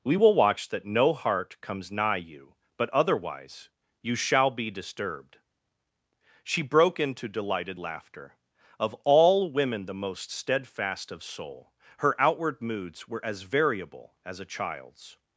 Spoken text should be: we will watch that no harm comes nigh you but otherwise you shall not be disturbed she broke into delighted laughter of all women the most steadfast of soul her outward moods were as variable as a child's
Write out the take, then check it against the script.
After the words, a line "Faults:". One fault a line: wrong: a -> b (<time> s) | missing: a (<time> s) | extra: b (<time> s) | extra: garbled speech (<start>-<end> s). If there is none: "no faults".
we will watch that no heart comes nigh you but otherwise you shall be disturbed she broke into delighted laughter of all women the most steadfast of soul her outward moods were as variable as a child's
Faults:
wrong: harm -> heart (1.1 s)
missing: not (4.5 s)